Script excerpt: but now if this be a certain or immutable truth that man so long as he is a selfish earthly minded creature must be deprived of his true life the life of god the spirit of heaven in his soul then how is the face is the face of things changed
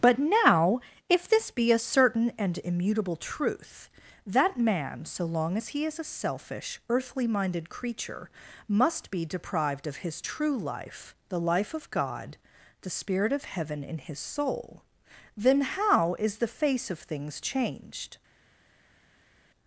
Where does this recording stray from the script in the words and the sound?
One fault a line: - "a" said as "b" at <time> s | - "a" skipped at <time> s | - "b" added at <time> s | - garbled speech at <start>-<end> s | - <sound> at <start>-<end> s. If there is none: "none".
- "or" said as "and" at 2.4 s
- "is the face" skipped at 16.9 s